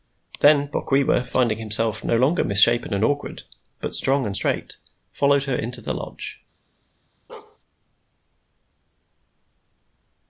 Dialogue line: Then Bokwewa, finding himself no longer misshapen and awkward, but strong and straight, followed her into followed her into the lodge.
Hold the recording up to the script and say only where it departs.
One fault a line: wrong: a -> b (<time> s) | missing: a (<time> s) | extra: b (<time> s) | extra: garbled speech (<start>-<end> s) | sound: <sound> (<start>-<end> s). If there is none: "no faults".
missing: followed her into (5.8 s)
sound: bark (7.3-7.6 s)